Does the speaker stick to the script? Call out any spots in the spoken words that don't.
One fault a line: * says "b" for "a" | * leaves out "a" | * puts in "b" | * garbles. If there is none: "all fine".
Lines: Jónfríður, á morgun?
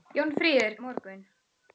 all fine